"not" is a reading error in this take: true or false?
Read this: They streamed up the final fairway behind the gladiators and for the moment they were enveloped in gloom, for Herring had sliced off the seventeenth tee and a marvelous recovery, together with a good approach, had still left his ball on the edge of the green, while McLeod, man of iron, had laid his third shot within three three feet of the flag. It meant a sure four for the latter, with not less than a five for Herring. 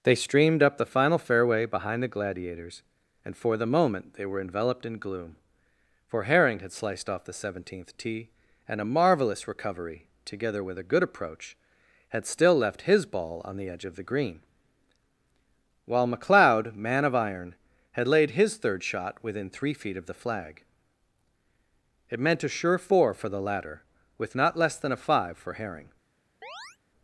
false